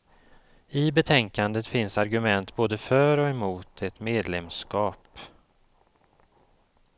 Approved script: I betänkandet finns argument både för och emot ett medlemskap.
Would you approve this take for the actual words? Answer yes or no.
yes